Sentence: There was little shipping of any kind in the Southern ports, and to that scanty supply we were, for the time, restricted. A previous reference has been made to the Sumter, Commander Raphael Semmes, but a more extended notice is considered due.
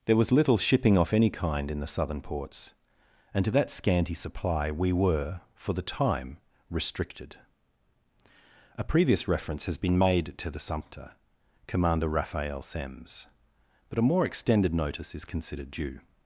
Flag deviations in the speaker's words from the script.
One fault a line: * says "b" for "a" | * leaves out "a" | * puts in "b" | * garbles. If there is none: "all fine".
* says "off" for "of"